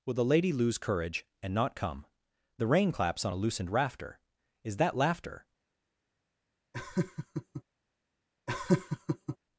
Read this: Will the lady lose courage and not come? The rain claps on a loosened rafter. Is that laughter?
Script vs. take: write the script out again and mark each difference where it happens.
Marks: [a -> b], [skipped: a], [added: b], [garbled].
Will the lady lose courage and not come? The rain claps on a loosened rafter. Is that laughter?